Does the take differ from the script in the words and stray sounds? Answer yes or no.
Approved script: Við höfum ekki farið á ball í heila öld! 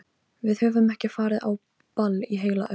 no